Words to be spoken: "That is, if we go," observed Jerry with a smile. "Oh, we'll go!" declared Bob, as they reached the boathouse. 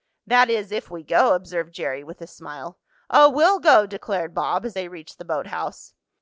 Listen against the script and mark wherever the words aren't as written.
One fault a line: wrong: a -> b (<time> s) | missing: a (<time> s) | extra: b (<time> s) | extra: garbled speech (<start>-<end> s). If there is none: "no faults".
no faults